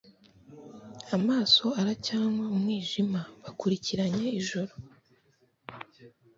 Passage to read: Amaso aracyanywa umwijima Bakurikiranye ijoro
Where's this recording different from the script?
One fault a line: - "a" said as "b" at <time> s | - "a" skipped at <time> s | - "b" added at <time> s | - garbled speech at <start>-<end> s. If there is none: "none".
none